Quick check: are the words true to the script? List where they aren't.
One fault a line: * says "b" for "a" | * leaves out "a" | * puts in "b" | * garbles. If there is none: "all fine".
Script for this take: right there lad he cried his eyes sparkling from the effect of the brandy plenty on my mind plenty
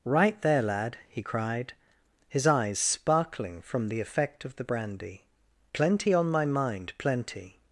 all fine